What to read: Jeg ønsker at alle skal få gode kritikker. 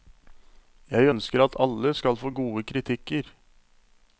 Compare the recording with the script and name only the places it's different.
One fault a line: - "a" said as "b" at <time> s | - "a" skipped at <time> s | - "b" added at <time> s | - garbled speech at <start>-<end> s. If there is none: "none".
none